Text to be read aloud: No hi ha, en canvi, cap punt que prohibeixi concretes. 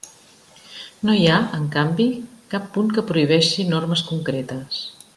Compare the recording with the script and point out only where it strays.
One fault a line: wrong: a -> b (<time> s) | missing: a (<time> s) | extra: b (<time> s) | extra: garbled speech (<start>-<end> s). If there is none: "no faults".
extra: normes (3.8 s)